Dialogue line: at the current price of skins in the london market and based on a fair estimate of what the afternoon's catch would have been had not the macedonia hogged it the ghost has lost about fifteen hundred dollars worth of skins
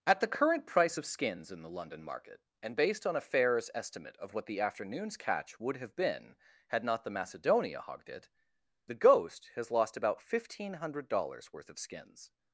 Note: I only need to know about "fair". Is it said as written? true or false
false